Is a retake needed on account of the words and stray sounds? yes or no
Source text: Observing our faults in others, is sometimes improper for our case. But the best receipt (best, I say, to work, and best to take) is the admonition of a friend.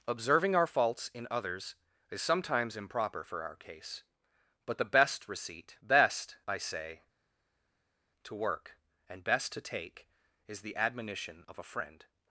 no